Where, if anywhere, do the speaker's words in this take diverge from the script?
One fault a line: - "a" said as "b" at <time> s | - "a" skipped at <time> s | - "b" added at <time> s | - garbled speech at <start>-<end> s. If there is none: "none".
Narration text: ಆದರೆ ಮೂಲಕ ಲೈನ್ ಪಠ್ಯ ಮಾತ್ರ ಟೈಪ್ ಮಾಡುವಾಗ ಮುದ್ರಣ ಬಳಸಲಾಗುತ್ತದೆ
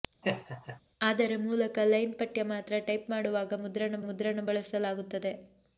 - "ಮುದ್ರಣ" added at 4.0 s